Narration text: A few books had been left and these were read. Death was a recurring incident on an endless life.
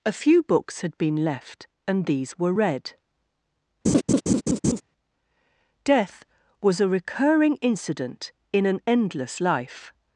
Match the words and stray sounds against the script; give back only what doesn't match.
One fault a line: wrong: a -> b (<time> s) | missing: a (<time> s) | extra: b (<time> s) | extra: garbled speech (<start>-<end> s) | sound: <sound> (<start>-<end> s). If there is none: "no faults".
sound: laugh (3.9-4.8 s)
wrong: on -> in (8.5 s)